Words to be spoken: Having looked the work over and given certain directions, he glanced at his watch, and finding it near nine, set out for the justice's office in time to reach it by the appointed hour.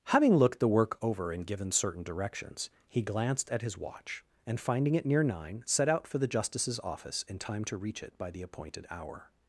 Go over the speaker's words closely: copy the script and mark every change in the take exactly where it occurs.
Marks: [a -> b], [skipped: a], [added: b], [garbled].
Having looked the work over and given certain directions, he glanced at his watch, and finding it near nine, set out for the justice's office in time to reach it by the appointed hour.